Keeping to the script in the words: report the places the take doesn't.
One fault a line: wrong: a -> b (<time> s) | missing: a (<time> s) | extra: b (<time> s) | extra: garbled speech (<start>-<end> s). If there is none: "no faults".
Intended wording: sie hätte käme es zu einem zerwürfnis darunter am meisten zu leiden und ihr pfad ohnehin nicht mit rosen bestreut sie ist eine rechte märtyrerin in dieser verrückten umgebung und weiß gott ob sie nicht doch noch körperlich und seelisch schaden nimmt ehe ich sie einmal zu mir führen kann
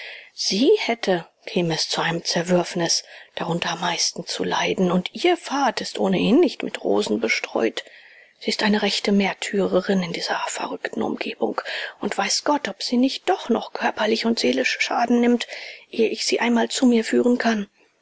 extra: ist (5.8 s)